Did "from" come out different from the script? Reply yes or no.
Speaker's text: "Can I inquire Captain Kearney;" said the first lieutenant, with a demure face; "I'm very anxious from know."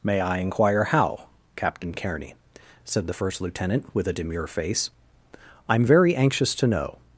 yes